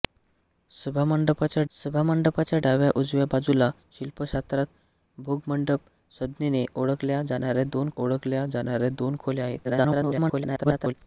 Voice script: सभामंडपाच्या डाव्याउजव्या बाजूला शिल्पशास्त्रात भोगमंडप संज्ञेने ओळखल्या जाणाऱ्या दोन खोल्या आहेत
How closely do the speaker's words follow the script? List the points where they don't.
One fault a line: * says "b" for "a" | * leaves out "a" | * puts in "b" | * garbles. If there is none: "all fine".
* puts in "सभामंडपाच्या"
* puts in "ओळखल्या जाणाऱ्या दोन"
* garbles